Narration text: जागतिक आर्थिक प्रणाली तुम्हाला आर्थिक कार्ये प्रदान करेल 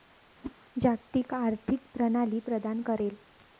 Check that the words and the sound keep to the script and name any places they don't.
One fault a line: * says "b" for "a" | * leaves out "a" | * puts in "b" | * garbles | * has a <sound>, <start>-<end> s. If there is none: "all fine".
* has a whoosh, 0.4-0.5 s
* leaves out "तुम्हाला आर्थिक कार्ये"